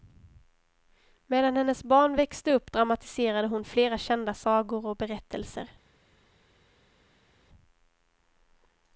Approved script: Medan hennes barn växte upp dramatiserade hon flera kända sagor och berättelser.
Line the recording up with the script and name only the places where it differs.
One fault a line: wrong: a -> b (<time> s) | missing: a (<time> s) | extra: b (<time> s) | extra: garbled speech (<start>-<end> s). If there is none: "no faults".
no faults